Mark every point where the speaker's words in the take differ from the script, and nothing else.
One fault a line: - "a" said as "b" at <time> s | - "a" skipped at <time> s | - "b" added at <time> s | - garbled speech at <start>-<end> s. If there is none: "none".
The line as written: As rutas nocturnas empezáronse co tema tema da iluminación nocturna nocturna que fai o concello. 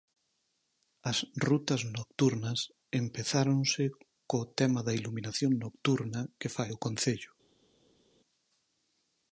- "tema" skipped at 4.8 s
- "nocturna" skipped at 6.2 s